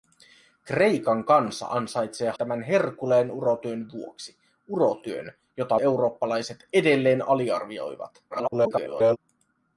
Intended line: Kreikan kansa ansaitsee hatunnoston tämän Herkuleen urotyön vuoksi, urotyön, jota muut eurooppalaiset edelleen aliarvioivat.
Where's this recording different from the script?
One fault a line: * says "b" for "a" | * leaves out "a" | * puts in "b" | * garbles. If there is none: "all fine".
* leaves out "hatunnoston"
* leaves out "muut"
* garbles